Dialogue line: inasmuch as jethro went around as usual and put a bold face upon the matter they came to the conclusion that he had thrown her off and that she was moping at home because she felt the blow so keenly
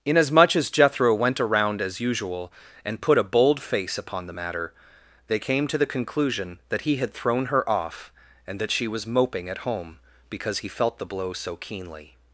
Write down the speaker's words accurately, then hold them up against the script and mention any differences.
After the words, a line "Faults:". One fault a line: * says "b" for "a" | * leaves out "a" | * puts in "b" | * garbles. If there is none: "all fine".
inasmuch as jethro went around as usual and put a bold face upon the matter they came to the conclusion that he had thrown her off and that she was moping at home because he felt the blow so keenly
Faults:
* says "he" for "she"